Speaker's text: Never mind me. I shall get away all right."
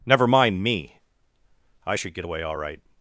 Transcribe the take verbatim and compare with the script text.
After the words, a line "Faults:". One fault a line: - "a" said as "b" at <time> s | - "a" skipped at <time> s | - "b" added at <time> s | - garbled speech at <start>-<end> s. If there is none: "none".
Never mind me. I should get away all right."
Faults:
- "shall" said as "should" at 1.9 s